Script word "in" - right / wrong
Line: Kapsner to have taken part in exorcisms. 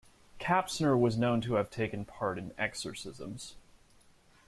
right